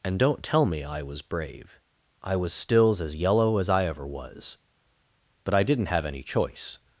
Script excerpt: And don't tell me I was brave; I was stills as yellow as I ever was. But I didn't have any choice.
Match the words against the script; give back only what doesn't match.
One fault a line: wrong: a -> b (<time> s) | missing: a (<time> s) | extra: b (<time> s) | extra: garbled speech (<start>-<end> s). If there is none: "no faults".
no faults